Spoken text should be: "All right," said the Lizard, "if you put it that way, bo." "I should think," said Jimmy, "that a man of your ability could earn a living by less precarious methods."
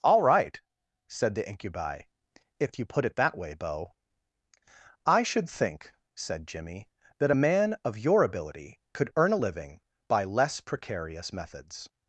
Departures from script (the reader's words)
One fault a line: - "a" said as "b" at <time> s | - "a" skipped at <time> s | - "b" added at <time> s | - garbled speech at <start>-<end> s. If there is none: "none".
- "Lizard" said as "Incubi" at 1.5 s